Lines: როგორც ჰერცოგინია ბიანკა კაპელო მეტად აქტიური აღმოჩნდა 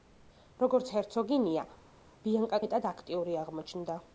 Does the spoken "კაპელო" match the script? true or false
false